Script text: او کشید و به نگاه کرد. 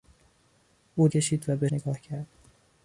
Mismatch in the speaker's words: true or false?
false